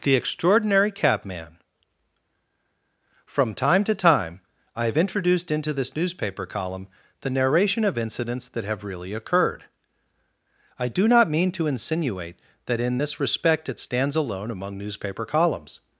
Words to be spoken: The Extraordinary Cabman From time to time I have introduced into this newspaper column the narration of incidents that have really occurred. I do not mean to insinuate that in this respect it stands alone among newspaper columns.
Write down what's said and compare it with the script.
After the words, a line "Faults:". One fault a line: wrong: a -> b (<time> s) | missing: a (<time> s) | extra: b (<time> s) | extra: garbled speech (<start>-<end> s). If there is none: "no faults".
The Extraordinary Cabman From time to time I have introduced into this newspaper column the narration of incidents that have really occurred. I do not mean to insinuate that in this respect it stands alone among newspaper columns.
Faults:
no faults